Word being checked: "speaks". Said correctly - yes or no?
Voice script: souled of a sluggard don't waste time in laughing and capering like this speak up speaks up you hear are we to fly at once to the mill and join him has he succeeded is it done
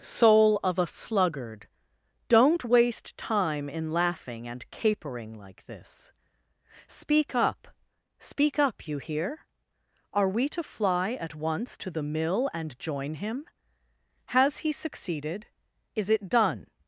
no